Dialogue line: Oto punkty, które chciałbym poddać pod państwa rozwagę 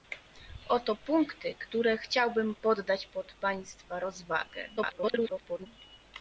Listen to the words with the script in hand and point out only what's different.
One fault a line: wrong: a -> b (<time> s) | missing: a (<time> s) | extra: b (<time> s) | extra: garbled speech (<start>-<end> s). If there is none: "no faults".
extra: garbled speech (4.8-5.7 s)